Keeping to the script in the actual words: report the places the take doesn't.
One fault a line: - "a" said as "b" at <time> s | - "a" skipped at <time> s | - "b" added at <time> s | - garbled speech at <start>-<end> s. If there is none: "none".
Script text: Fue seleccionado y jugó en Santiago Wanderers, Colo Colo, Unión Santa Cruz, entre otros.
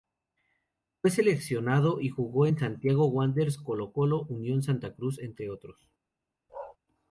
none